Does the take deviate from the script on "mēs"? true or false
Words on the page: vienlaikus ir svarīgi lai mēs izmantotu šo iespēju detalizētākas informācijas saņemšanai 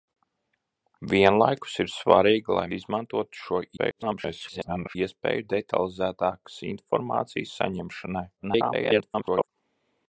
true